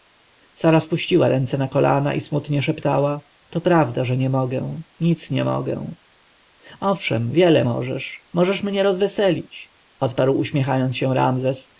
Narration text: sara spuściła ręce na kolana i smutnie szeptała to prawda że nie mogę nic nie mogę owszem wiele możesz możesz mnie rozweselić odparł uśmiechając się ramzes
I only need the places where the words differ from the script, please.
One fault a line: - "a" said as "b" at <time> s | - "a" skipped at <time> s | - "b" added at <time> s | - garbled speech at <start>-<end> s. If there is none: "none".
none